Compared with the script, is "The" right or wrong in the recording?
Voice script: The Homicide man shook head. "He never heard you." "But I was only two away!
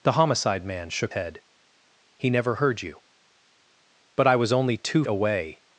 right